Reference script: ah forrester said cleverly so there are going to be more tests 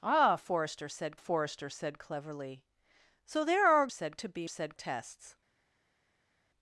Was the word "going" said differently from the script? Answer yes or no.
yes